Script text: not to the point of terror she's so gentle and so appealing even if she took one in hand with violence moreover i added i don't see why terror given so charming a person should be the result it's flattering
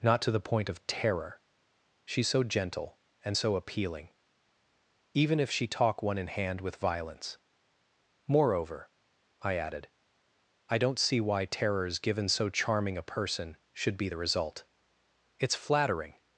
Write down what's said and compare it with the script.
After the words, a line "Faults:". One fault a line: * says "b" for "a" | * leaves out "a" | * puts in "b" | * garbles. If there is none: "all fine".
not to the point of terror she's so gentle and so appealing even if she talk one in hand with violence moreover i added i don't see why terrors given so charming a person should be the result it's flattering
Faults:
* says "talk" for "took"
* says "terrors" for "terror"